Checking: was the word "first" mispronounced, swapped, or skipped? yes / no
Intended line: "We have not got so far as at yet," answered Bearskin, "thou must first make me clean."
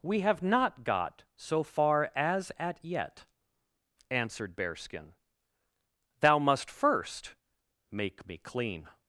no